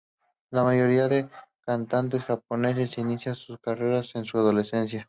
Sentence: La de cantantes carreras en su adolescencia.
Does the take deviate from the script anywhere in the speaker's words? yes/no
yes